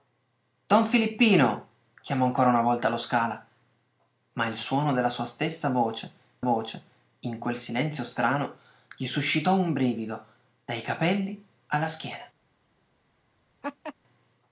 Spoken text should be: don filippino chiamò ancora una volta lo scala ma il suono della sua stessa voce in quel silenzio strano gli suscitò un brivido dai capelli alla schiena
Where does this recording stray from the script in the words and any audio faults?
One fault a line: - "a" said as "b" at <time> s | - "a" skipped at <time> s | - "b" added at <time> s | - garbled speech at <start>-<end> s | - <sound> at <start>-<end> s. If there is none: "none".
- "voce" added at 6.4 s
- laugh at 13.6-13.9 s